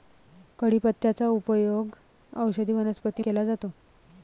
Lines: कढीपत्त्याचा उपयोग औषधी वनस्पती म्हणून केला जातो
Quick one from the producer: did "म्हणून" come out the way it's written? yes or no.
no